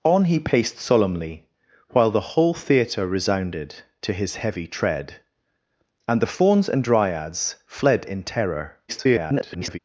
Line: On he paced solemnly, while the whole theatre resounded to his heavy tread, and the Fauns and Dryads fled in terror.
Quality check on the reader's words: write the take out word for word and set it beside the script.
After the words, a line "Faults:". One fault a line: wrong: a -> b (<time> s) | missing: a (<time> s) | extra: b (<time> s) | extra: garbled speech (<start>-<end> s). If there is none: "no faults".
On he paced solemnly, while the whole theatre resounded to his heavy tread, and the Fauns and Dryads fled in terror. [garbled]
Faults:
extra: garbled speech (8.9-9.8 s)